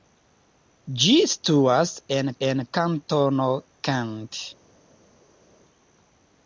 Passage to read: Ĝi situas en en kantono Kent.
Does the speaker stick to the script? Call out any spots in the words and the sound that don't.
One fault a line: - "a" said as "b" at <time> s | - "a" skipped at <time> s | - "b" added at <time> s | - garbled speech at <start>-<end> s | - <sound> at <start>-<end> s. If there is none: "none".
none